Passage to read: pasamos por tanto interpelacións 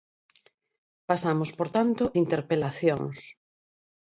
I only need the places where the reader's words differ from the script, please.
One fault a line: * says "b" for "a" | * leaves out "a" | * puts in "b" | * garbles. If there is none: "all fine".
all fine